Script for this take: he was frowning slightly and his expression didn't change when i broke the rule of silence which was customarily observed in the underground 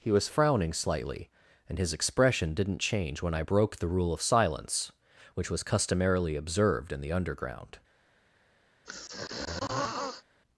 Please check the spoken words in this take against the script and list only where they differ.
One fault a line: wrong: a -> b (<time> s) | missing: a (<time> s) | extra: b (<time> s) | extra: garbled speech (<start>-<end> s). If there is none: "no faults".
no faults